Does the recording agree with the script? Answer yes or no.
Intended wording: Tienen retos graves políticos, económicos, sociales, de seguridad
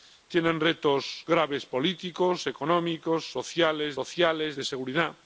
no